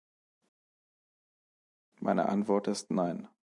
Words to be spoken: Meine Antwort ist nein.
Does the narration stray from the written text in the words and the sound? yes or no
no